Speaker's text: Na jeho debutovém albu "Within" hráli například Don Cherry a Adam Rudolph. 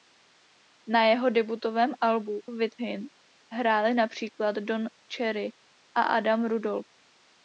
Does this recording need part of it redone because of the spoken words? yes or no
no